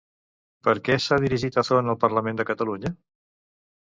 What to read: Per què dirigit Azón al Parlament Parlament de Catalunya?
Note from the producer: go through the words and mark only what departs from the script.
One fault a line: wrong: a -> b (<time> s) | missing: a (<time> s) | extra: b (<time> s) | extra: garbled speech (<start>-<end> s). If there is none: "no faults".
extra: s'ha (1.0 s)
missing: Parlament (2.4 s)